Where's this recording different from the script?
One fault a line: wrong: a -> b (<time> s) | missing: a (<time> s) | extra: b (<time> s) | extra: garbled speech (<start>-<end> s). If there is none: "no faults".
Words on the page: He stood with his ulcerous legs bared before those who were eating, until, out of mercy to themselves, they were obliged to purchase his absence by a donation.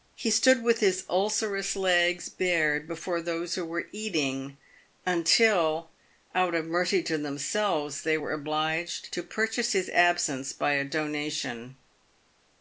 no faults